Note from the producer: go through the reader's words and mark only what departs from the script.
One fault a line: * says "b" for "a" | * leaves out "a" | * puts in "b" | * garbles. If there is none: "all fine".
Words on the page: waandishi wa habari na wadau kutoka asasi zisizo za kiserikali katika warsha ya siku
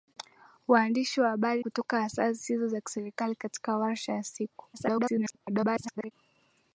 * leaves out "na wadau"
* garbles